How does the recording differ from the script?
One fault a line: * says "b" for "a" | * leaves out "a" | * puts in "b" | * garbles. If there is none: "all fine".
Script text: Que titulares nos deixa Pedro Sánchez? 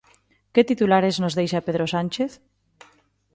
all fine